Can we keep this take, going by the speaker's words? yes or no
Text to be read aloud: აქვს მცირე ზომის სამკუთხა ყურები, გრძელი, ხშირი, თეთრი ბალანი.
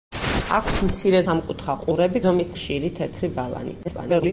no